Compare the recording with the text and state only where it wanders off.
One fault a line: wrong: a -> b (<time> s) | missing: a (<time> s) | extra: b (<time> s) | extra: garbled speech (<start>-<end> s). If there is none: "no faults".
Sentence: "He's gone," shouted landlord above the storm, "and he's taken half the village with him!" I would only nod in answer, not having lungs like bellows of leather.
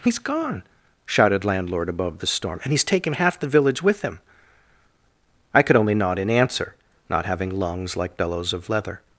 wrong: would -> could (5.6 s)